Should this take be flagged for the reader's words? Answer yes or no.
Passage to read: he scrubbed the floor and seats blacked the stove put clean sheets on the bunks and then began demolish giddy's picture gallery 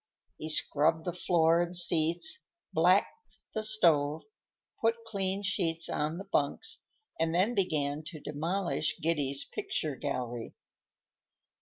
yes